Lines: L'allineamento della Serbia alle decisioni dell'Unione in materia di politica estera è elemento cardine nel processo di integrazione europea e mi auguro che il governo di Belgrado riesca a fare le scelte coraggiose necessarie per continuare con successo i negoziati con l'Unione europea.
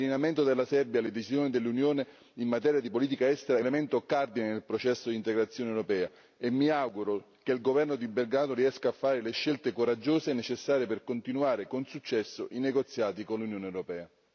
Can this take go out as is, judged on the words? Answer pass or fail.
pass